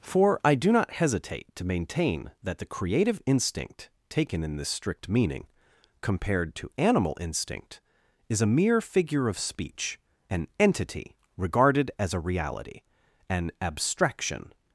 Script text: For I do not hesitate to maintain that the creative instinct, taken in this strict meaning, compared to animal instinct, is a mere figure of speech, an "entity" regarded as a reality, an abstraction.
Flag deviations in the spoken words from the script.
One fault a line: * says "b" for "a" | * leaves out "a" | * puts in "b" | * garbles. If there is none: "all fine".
all fine